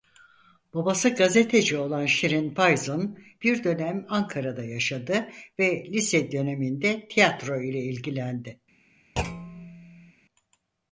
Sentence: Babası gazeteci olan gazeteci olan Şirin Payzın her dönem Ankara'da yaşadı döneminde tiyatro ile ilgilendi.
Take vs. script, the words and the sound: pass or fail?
fail